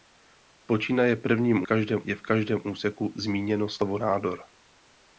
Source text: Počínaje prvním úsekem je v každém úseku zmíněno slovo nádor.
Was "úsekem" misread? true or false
true